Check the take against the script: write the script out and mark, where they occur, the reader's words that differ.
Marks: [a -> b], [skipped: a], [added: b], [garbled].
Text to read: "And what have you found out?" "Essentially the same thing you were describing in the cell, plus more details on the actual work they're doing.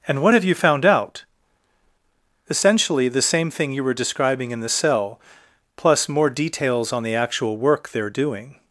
"And what have you found out?" "Essentially the same thing you were describing in the cell, plus more details on the actual work they're doing.